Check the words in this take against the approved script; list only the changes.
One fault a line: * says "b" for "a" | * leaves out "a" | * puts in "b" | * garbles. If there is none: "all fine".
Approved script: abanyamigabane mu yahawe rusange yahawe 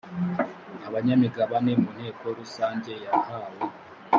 * says "nteko" for "yahawe"